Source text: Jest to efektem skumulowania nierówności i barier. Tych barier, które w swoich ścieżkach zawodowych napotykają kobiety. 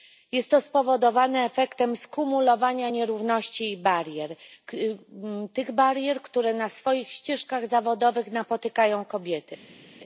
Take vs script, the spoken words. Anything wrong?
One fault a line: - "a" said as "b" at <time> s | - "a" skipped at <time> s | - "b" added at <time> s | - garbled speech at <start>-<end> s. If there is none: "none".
- "spowodowane" added at 0.6 s
- "w" said as "na" at 6.5 s